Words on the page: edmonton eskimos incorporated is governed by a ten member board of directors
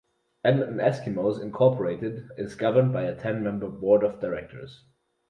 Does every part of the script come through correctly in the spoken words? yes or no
yes